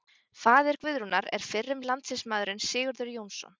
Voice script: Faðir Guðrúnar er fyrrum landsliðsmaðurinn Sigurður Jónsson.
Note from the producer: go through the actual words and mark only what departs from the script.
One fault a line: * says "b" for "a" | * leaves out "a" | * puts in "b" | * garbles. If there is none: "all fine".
all fine